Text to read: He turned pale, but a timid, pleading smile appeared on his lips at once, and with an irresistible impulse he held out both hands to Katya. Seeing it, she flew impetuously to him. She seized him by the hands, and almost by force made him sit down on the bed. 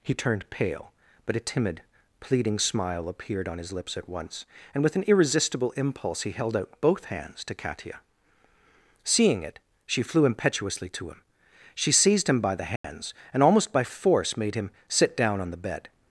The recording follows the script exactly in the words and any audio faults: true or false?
false